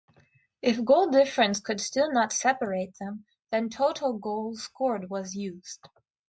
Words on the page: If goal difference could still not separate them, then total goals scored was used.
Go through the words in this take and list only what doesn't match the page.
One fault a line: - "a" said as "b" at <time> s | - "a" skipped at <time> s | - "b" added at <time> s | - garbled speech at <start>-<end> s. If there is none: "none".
none